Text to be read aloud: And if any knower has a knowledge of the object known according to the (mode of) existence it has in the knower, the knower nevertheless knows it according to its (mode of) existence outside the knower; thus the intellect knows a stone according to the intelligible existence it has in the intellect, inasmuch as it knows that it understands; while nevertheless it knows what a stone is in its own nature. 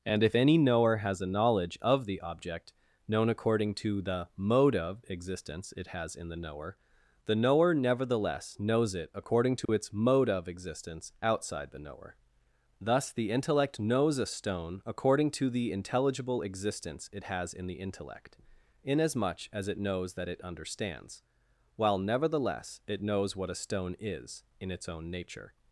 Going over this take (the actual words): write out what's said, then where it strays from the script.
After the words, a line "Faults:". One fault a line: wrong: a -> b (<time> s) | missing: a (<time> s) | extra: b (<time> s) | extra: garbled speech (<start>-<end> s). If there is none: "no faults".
And if any knower has a knowledge of the object known according to the (mode of) existence it has in the knower, the knower nevertheless knows it according to its (mode of) existence outside the knower; thus the intellect knows a stone according to the intelligible existence it has in the intellect, inasmuch as it knows that it understands; while nevertheless it knows what a stone is in its own nature.
Faults:
no faults